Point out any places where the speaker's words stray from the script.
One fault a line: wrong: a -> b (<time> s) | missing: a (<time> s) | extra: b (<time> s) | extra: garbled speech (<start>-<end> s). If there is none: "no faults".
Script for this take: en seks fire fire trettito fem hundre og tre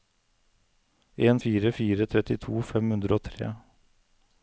missing: seks (1.4 s)